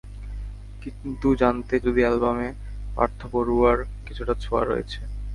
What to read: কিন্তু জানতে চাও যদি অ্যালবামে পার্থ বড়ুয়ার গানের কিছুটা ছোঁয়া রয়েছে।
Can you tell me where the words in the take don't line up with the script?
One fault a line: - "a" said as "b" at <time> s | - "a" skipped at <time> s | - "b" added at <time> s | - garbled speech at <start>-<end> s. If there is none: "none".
- "চাও" skipped at 1.8 s
- "গানের" skipped at 3.8 s